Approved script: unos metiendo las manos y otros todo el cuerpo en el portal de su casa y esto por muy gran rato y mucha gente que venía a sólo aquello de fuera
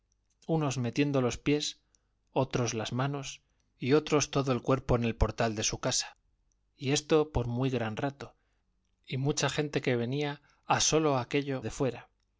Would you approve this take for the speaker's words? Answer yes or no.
no